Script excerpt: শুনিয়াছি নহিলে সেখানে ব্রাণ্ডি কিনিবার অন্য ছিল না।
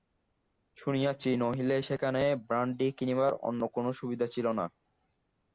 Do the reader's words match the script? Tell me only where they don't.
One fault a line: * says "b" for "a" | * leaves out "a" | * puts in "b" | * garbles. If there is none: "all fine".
* puts in "কোনো সুবিধা"